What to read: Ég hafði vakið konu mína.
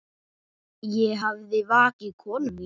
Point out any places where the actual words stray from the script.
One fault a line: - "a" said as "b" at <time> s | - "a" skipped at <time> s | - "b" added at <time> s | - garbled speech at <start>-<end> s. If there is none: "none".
none